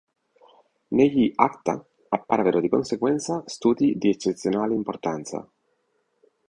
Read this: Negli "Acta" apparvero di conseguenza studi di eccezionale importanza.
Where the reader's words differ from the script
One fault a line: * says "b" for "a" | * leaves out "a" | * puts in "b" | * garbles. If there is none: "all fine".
all fine